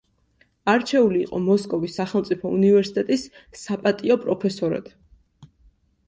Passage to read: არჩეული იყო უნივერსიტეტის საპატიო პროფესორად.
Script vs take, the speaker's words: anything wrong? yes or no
yes